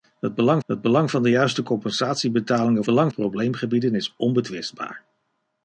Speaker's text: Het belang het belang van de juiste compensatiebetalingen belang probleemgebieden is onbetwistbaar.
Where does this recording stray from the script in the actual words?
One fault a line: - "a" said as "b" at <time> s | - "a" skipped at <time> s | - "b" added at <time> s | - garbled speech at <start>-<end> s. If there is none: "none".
none